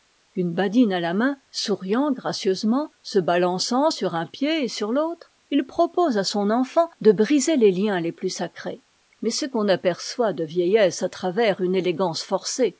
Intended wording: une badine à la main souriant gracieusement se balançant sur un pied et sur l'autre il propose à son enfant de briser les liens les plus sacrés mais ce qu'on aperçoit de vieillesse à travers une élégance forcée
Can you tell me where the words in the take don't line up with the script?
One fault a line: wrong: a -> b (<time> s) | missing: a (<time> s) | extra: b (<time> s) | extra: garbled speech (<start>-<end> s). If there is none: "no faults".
no faults